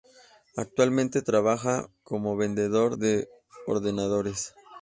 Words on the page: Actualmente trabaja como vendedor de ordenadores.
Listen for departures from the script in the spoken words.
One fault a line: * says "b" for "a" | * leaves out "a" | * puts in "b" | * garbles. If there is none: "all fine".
all fine